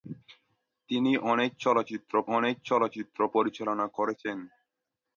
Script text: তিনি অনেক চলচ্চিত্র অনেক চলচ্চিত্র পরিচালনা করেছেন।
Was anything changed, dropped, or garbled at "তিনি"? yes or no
no